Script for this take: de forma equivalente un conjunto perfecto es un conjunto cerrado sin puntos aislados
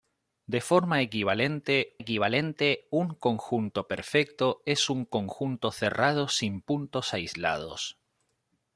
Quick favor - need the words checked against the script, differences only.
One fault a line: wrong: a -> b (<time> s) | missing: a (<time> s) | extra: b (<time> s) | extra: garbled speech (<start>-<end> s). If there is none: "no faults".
extra: equivalente (2.0 s)